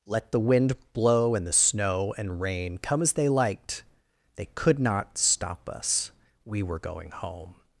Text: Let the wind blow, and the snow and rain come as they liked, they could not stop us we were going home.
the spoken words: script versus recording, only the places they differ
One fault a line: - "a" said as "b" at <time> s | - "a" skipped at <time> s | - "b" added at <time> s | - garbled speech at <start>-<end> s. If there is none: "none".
none